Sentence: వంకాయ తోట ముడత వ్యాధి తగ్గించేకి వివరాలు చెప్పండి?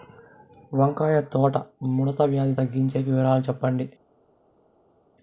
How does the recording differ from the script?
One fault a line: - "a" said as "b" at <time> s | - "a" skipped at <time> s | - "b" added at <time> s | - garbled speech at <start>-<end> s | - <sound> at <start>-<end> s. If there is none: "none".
none